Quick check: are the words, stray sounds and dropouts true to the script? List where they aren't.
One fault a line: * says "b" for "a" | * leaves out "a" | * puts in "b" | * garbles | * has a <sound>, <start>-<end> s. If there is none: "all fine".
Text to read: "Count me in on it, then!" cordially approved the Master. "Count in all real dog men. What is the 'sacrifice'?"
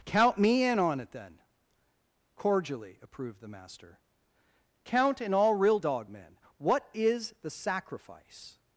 all fine